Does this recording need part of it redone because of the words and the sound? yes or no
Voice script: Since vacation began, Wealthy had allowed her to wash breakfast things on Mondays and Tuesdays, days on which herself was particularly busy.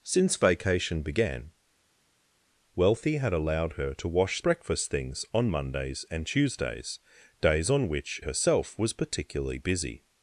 no